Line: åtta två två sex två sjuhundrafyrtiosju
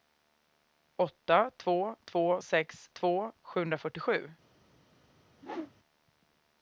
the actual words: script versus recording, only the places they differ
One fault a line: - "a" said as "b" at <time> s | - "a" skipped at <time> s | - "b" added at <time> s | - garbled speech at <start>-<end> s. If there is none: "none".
none